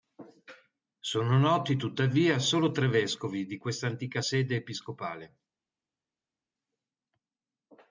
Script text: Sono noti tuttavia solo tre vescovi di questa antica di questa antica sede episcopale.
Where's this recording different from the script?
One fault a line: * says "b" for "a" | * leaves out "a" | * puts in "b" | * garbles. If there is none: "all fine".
* leaves out "di questa antica"